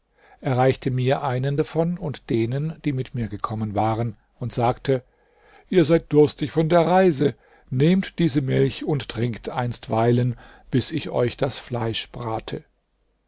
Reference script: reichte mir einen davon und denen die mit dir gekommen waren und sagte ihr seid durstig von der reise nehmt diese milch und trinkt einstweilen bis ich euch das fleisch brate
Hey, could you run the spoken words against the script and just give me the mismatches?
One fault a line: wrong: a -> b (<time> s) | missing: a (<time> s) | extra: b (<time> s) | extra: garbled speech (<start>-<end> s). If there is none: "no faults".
wrong: dir -> mir (3.1 s)